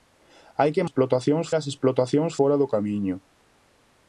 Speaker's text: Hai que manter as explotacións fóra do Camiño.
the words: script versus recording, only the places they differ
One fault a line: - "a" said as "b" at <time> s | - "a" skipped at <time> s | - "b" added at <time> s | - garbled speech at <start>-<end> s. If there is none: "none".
- "manter" said as "explotacións" at 0.8 s